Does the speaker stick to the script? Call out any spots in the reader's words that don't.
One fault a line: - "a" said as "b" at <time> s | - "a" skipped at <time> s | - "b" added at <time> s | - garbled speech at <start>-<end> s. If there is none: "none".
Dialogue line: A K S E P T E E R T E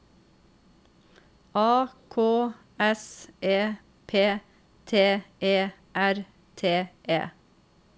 - "E" skipped at 5.7 s